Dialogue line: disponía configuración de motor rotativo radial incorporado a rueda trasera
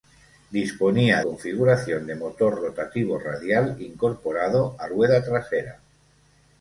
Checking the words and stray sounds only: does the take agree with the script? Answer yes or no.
yes